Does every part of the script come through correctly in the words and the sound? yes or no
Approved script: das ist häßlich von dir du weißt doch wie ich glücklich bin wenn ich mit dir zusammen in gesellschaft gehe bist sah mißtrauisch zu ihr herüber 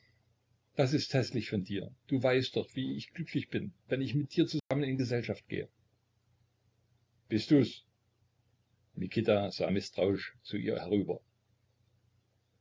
no